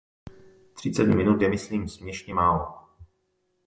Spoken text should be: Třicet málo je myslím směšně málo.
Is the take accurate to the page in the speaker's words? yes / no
no